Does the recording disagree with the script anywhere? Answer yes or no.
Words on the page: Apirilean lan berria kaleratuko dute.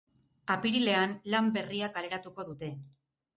no